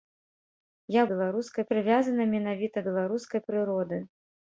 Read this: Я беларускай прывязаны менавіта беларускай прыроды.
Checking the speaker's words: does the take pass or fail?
pass